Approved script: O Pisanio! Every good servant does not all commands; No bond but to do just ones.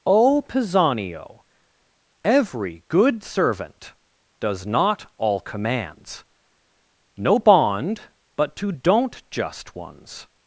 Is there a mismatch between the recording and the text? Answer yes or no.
yes